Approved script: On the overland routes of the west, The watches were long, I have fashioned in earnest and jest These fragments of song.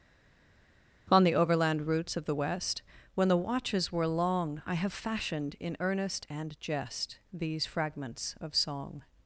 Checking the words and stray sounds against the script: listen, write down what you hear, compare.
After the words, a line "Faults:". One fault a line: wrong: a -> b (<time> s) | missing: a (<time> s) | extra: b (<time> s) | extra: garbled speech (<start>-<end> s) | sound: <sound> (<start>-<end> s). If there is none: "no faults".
On the overland routes of the west, When the watches were long, I have fashioned in earnest and jest These fragments of song.
Faults:
extra: When (3.1 s)